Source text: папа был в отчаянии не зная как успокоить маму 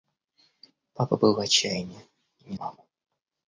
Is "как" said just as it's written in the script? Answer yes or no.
no